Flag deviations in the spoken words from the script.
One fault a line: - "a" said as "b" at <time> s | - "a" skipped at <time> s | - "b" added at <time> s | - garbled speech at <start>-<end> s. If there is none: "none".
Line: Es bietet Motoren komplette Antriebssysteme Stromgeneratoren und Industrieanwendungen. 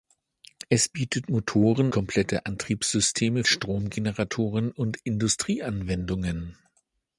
none